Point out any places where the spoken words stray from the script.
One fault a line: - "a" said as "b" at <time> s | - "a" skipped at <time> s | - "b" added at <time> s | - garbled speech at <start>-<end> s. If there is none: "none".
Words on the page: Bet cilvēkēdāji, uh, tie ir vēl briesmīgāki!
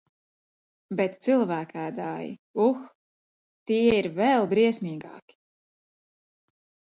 none